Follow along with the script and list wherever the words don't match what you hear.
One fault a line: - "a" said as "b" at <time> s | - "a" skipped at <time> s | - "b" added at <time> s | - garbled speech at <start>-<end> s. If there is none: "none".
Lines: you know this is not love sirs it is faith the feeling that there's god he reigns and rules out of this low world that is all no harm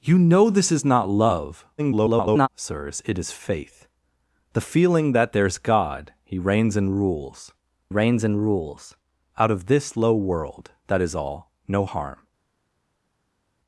- garbled speech at 1.8-2.5 s
- "reigns and rules" added at 7.9 s